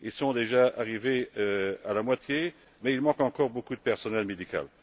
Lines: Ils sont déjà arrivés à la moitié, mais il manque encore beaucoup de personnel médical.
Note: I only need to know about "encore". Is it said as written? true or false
true